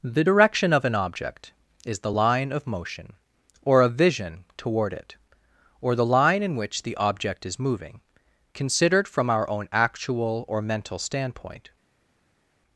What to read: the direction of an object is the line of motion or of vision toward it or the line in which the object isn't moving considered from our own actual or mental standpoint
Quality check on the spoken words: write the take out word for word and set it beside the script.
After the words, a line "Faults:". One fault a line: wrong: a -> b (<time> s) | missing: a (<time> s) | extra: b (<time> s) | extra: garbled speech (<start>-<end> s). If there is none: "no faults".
the direction of an object is the line of motion or of vision toward it or the line in which the object is moving considered from our own actual or mental standpoint
Faults:
wrong: isn't -> is (7.5 s)